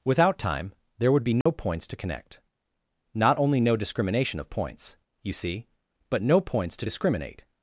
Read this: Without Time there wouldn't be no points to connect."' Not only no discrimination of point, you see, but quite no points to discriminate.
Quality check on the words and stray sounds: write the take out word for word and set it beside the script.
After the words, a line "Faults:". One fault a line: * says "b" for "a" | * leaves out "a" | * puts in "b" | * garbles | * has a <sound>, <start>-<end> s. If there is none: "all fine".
Without Time there would be no points to connect."' Not only no discrimination of points, you see, but no points to discriminate.
Faults:
* says "would" for "wouldn't"
* has a dropout, 1.4-1.5 s
* says "points" for "point"
* leaves out "quite"